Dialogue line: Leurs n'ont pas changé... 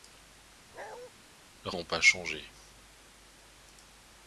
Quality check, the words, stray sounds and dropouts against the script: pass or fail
fail